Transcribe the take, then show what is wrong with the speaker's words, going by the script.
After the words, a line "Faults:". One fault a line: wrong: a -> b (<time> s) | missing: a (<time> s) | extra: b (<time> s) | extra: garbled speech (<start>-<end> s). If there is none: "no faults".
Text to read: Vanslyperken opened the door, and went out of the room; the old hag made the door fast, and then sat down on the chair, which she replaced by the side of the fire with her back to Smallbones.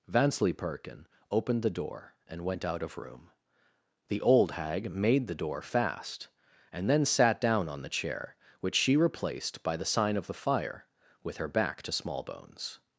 Vanslyperken opened the door, and went out of room; the old hag made the door fast, and then sat down on the chair, which she replaced by the sign of the fire with her back to Smallbones.
Faults:
missing: the (3.0 s)
wrong: side -> sign (9.9 s)